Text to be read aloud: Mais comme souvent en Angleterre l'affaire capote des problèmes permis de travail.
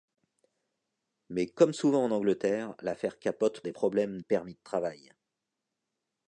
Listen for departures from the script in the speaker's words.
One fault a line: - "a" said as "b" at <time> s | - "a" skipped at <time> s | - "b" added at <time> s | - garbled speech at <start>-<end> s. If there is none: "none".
none